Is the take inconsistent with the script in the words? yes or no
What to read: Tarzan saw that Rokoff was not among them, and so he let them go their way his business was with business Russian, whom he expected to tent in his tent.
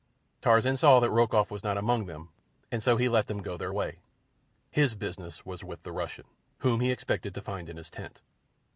yes